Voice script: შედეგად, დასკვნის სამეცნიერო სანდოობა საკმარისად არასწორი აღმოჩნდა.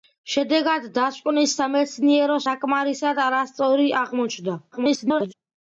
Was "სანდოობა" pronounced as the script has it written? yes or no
no